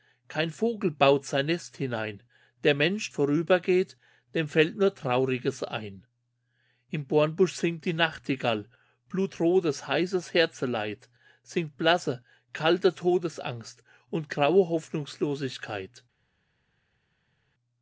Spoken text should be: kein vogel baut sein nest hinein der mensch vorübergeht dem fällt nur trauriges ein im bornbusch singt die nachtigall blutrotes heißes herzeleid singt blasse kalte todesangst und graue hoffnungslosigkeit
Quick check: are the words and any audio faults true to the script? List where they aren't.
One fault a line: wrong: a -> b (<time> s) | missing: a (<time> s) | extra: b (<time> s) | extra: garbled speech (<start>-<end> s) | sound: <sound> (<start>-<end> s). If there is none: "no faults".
no faults